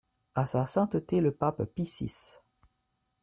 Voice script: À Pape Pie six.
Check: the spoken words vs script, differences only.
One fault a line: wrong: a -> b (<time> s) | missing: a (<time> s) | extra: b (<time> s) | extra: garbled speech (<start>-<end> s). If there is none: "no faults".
extra: Sa Sainteté le (0.5 s)